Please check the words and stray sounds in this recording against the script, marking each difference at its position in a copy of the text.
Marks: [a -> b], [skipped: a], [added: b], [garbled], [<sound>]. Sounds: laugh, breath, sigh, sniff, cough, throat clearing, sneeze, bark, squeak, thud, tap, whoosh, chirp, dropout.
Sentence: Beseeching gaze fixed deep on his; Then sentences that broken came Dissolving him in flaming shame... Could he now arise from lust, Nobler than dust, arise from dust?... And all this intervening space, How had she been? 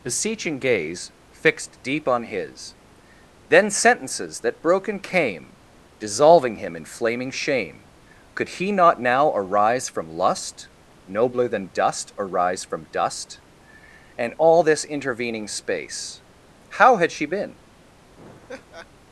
Beseeching gaze fixed deep on his; Then sentences that broken came Dissolving him in flaming shame... Could he [added: not] now arise from lust, Nobler than dust, arise from dust?... And all this intervening space, How had she been? [laugh]